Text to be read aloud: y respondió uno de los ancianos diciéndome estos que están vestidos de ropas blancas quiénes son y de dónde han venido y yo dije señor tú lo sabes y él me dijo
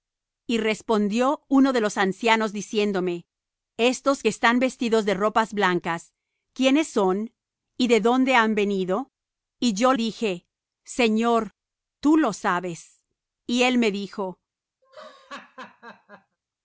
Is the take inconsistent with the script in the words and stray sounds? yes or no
yes